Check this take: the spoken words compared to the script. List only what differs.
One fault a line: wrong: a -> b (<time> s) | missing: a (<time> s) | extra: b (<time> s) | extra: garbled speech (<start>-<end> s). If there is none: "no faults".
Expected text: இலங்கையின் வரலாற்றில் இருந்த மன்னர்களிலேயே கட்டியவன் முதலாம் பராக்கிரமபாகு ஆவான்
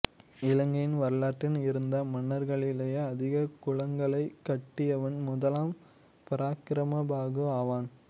extra: அதிக குளங்களைக் (3.0 s)